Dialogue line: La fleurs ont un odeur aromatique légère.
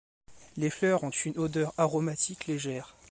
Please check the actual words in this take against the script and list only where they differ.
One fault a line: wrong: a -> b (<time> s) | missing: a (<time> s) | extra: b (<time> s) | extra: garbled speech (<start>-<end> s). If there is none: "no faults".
wrong: La -> Les (0.6 s)
wrong: un -> une (1.1 s)